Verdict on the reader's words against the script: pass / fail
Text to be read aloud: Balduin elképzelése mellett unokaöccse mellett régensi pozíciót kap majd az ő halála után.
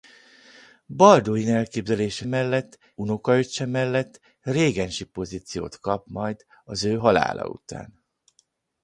pass